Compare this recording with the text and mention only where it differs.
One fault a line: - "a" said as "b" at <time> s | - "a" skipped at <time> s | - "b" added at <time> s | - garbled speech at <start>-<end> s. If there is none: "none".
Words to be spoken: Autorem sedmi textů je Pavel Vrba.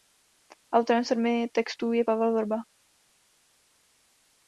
none